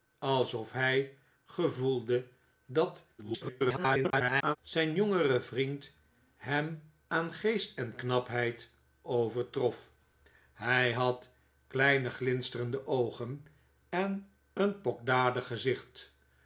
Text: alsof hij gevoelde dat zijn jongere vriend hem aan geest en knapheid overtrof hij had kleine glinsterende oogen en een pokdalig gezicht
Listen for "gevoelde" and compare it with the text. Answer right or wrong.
right